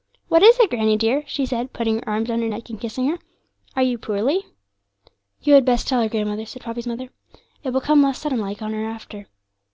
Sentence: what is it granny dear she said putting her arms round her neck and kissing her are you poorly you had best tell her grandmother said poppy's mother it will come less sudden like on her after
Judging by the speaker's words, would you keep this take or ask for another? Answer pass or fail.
pass